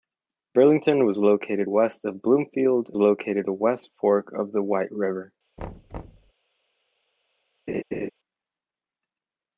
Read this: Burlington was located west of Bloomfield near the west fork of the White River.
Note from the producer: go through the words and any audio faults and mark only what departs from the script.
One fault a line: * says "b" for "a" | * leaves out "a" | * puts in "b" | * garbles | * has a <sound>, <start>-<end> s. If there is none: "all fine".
* says "located" for "near"
* has a thud, 5.6-6.3 s
* has a laugh, 7.7-8.1 s